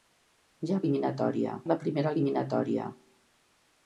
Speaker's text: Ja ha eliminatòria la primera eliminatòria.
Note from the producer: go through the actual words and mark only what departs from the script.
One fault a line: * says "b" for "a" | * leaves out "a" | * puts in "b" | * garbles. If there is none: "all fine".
all fine